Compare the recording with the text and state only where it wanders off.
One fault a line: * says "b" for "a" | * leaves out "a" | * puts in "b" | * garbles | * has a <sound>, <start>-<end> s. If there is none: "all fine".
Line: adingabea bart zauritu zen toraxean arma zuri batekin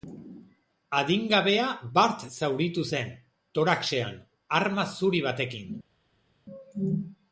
all fine